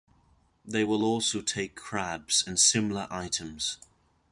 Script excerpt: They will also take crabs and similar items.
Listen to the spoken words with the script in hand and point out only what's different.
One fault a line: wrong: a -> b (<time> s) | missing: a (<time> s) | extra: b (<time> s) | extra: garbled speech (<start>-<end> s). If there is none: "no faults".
no faults